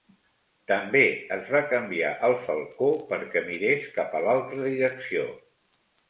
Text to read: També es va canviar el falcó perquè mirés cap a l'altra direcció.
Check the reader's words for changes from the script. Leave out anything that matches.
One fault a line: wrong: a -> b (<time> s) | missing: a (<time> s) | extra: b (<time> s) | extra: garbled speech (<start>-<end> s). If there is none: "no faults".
no faults